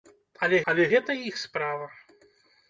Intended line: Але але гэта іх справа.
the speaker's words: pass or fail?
pass